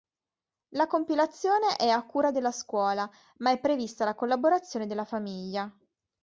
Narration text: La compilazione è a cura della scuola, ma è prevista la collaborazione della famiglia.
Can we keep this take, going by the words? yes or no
yes